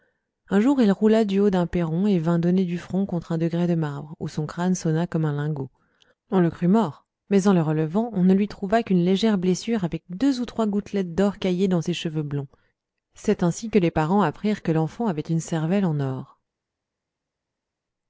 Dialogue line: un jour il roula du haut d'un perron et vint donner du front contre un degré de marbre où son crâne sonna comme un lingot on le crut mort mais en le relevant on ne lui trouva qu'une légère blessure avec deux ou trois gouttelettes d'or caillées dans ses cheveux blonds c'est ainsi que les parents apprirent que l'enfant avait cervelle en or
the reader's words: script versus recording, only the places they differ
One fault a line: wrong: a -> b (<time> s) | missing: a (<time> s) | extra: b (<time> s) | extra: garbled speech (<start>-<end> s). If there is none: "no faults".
extra: une (15.2 s)